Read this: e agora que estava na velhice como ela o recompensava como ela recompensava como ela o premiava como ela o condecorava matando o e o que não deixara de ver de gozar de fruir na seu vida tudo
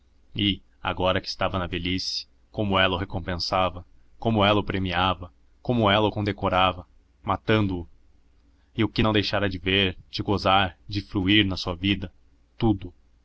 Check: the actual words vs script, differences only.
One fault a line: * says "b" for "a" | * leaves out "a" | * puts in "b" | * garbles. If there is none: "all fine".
* leaves out "recompensava como ela"
* says "sua" for "seu"